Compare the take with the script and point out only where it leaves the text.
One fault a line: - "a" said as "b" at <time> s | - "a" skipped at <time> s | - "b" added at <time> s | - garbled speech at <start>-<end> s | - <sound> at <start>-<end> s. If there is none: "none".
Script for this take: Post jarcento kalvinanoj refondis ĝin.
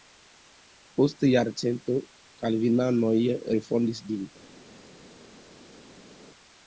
none